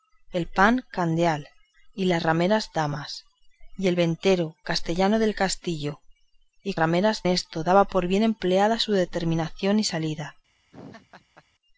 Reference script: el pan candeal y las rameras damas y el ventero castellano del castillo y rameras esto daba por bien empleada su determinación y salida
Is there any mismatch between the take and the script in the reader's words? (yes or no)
no